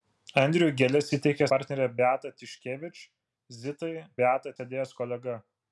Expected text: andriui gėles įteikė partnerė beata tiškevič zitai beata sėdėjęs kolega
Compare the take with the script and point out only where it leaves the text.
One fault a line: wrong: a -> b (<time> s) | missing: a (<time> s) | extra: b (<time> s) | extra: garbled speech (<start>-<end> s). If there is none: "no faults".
no faults